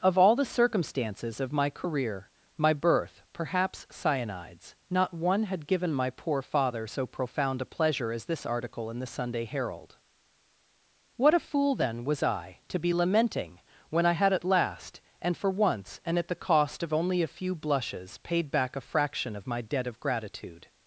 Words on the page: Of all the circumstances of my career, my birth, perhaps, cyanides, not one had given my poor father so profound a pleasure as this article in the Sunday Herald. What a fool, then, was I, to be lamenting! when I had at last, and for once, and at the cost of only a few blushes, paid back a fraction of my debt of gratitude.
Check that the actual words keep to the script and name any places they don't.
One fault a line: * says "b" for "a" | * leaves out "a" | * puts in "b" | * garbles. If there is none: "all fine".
all fine